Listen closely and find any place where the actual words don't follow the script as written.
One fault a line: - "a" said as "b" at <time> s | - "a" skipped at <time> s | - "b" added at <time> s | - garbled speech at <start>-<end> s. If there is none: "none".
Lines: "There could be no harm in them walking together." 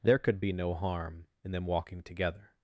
none